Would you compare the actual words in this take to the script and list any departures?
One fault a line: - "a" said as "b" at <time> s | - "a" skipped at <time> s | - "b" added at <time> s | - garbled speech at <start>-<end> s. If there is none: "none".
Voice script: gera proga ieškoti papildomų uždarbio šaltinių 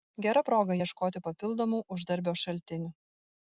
none